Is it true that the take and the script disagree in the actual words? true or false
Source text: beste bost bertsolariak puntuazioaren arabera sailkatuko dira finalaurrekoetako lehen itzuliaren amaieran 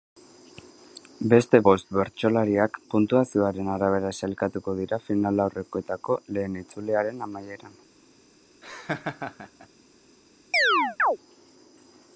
false